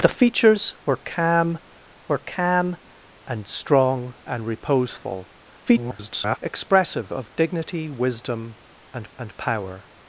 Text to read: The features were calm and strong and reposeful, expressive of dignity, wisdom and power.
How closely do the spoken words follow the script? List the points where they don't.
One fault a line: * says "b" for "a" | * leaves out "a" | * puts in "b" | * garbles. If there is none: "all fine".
* puts in "were calm"
* garbles
* puts in "and"